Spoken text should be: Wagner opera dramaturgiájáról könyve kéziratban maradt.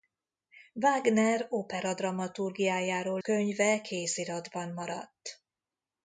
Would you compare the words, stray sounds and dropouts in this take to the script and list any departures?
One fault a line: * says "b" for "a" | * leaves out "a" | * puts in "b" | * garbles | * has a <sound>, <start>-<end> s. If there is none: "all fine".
all fine